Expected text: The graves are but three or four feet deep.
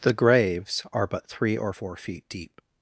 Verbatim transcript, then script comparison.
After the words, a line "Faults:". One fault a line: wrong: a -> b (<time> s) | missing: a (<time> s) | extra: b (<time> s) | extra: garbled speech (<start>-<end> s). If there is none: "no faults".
The graves are but three or four feet deep.
Faults:
no faults